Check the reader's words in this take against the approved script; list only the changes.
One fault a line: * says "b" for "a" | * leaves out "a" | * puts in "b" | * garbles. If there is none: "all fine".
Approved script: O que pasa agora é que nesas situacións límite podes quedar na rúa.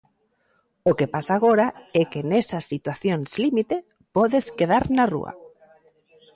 all fine